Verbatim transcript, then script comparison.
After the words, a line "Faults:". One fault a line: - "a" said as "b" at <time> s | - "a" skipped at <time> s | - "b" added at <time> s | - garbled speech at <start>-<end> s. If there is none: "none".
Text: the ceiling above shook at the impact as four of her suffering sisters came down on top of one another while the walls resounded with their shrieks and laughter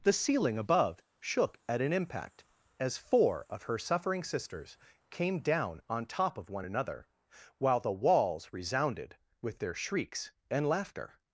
the ceiling above shook at an impact as four of her suffering sisters came down on top of one another while the walls resounded with their shrieks and laughter
Faults:
- "the" said as "an" at 1.8 s